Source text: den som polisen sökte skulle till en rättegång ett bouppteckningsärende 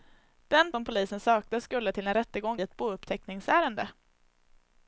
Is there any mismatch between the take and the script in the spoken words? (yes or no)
no